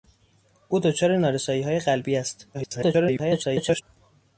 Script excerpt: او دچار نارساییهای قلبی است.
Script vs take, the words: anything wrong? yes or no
yes